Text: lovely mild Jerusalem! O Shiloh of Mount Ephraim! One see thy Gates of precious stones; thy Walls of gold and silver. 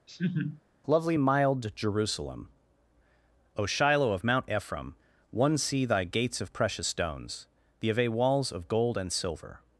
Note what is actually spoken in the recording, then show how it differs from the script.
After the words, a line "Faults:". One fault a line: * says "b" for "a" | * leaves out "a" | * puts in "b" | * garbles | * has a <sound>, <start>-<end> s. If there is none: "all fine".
lovely mild Jerusalem! O Shiloh of Mount Ephraim! One see thy Gates of precious stones; the ave Walls of gold and silver.
Faults:
* has a laugh, 0.1-0.6 s
* says "the ave" for "thy"